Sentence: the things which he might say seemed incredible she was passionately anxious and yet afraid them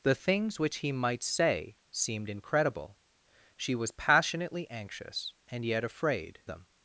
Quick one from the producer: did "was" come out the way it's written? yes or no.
yes